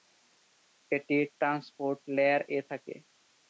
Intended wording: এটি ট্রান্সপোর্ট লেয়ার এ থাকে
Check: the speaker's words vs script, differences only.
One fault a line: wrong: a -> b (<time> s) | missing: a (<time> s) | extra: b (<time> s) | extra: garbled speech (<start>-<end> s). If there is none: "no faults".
no faults